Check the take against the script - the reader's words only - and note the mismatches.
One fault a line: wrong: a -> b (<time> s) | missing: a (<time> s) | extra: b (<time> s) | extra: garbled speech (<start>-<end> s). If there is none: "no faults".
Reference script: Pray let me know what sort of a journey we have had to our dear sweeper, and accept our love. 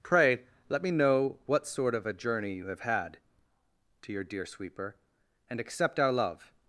wrong: we -> you (2.5 s)
wrong: our -> your (4.1 s)